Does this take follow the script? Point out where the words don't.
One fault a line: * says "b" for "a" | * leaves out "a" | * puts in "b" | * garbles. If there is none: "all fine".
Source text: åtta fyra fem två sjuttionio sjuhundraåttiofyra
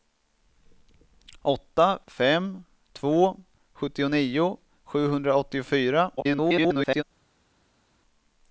* leaves out "fyra"
* garbles